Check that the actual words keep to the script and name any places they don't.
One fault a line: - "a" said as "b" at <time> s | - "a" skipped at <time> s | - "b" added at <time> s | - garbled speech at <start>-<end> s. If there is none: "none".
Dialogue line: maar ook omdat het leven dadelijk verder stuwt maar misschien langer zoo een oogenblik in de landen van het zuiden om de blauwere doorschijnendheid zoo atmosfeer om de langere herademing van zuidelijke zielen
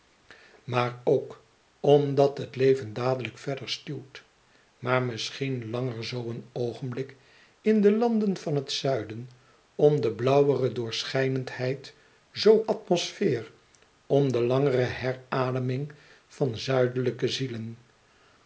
none